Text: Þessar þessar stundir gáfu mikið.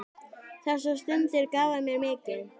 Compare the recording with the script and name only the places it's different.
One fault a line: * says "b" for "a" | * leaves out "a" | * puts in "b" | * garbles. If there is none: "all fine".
* leaves out "þessar"
* puts in "mér"